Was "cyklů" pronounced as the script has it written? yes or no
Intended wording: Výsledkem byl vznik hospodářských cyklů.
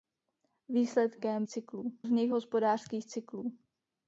yes